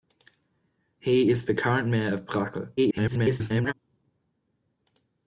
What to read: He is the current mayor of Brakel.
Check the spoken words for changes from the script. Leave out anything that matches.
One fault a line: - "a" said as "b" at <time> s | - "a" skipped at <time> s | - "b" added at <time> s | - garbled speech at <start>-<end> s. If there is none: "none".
- garbled speech at 2.8-3.7 s